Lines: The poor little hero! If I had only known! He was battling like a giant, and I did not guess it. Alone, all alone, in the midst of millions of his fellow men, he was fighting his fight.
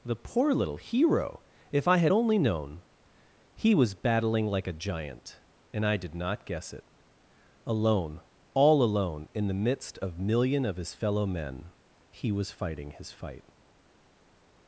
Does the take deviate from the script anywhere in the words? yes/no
yes